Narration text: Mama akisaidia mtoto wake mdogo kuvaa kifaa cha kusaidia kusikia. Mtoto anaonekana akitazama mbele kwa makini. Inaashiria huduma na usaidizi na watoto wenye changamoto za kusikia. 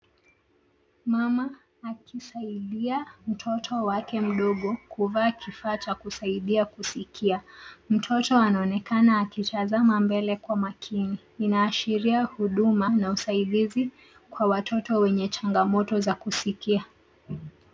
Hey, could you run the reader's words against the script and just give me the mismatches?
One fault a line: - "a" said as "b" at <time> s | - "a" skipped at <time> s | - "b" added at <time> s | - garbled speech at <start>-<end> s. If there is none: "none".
- "na" said as "kwa" at 14.3 s